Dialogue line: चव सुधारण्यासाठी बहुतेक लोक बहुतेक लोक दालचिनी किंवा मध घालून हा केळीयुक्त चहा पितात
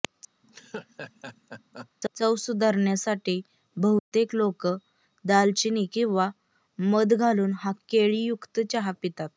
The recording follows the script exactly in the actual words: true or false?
false